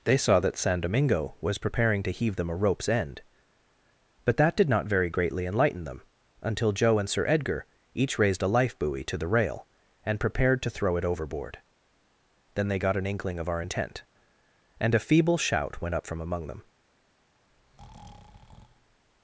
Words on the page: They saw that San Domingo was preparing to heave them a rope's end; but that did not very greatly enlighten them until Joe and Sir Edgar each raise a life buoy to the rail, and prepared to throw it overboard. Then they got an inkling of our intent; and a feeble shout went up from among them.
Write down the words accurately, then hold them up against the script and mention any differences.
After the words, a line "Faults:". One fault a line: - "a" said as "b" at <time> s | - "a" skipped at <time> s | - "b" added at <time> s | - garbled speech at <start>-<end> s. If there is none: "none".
They saw that San Domingo was preparing to heave them a rope's end; but that did not very greatly enlighten them until Joe and Sir Edgar each raised a life buoy to the rail, and prepared to throw it overboard. Then they got an inkling of our intent; and a feeble shout went up from among them.
Faults:
- "raise" said as "raised" at 8.2 s